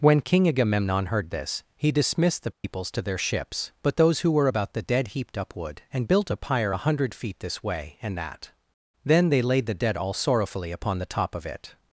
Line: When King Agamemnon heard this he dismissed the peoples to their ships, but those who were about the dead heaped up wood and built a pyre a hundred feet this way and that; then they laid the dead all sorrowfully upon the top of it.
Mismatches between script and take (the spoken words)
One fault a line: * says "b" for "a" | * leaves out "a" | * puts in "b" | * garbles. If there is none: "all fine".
all fine